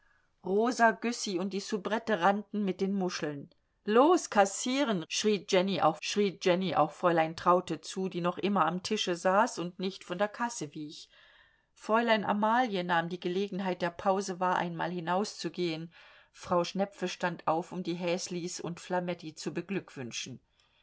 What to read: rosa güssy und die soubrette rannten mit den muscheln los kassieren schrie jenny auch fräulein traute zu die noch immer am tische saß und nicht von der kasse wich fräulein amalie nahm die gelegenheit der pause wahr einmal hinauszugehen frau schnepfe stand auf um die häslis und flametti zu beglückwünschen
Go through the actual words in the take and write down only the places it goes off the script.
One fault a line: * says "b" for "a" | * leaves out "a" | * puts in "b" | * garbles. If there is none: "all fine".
* puts in "schrie jenny auch"